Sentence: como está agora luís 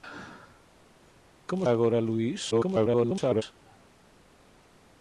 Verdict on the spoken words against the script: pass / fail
fail